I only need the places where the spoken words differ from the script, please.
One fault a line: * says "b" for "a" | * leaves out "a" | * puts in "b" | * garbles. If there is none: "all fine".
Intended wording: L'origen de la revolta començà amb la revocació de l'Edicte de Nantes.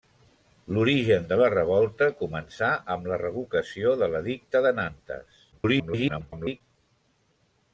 * garbles